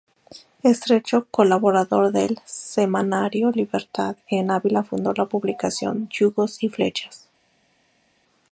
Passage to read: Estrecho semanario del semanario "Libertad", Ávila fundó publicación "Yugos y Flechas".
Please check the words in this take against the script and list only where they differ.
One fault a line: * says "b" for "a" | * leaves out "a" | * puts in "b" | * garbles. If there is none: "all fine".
* says "colaborador" for "semanario"
* puts in "en"
* puts in "la"